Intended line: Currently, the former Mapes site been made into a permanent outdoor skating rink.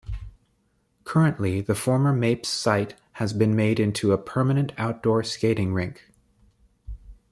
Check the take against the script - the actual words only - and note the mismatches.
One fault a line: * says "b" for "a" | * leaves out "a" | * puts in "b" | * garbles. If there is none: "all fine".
* puts in "has"